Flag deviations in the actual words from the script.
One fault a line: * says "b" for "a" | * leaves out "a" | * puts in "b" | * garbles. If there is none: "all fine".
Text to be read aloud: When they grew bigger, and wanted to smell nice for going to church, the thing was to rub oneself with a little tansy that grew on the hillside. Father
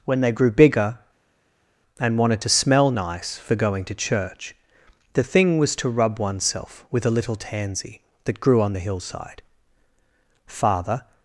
all fine